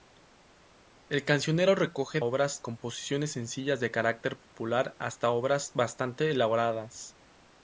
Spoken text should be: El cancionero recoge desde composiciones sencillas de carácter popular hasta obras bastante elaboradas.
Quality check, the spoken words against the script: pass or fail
fail